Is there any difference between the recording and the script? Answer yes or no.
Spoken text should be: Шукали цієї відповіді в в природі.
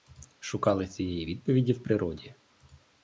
yes